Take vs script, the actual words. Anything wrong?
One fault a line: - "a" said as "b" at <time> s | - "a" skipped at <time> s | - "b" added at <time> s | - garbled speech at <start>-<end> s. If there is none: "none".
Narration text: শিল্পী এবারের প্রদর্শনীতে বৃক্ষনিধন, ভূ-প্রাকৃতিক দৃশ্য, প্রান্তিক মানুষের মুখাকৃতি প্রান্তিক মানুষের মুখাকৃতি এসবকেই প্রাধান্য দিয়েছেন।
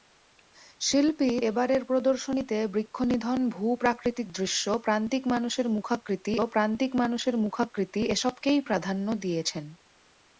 none